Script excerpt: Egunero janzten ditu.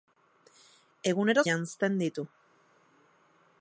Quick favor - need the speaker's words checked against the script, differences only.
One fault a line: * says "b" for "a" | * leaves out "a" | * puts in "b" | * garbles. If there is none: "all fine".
all fine